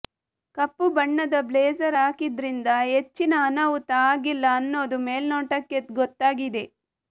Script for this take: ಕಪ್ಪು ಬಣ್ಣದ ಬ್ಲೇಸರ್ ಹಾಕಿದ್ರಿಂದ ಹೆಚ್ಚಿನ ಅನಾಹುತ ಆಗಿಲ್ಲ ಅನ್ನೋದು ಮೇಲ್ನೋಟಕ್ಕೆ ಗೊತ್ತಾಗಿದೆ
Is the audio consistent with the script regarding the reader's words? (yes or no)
yes